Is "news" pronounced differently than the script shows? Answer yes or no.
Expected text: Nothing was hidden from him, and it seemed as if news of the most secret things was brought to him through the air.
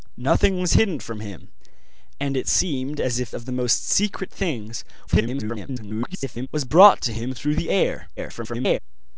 yes